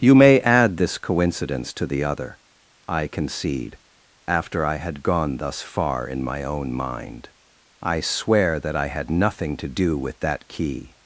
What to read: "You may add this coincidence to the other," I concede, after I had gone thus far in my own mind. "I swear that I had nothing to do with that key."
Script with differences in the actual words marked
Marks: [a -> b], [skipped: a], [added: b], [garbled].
"You may add this coincidence to the other," I concede, after I had gone thus far in my own mind. "I swear that I had nothing to do with that key."